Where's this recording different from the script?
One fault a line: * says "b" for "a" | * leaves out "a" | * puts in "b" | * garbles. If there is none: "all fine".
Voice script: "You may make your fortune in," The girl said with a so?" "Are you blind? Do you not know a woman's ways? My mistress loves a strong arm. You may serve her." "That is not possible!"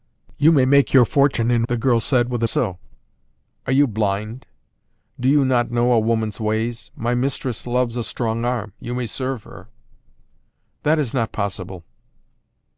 all fine